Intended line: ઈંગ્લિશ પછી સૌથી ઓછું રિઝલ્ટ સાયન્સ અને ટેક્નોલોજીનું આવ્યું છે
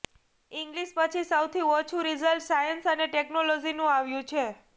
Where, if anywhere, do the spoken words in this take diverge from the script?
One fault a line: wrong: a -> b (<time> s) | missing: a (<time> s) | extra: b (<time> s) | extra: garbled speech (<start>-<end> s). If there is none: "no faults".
no faults